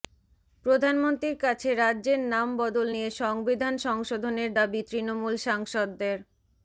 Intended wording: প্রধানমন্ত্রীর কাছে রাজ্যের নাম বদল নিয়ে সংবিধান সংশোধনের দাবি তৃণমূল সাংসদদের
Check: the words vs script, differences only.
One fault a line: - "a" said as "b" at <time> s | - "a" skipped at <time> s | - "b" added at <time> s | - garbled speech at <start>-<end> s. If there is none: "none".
none